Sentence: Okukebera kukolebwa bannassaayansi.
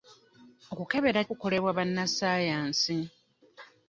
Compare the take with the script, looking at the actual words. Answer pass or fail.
pass